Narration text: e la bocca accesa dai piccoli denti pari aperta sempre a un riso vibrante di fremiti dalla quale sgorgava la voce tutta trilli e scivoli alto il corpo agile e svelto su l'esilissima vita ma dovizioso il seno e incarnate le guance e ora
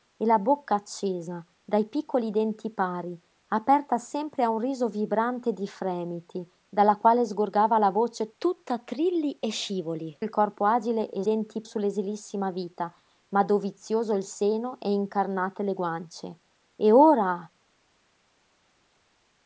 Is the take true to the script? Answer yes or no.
no